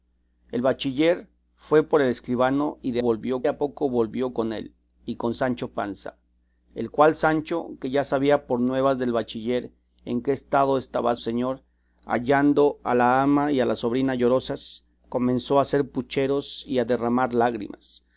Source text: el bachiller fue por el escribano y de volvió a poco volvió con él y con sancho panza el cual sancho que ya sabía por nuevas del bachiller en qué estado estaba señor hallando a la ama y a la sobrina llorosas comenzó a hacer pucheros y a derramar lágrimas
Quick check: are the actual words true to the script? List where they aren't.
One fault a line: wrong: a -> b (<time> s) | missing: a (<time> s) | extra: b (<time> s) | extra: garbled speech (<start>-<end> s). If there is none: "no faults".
no faults